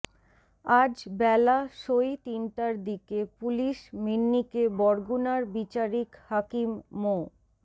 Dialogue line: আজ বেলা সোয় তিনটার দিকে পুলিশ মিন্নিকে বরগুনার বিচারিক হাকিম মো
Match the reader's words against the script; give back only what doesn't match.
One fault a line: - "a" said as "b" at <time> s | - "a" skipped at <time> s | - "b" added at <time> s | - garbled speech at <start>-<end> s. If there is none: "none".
none